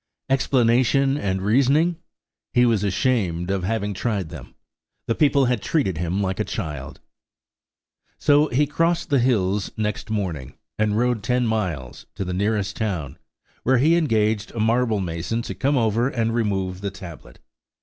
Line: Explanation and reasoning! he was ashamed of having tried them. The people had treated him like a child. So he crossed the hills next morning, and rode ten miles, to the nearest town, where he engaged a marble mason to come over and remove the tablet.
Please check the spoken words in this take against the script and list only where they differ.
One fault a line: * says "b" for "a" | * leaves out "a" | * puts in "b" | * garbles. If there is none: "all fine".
all fine